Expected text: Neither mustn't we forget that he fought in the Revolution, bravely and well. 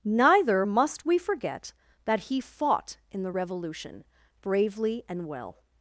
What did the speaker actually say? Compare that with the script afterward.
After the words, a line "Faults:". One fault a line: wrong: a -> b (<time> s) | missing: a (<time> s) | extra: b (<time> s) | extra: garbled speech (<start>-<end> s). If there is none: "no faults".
Neither must we forget that he fought in the Revolution, bravely and well.
Faults:
wrong: mustn't -> must (0.6 s)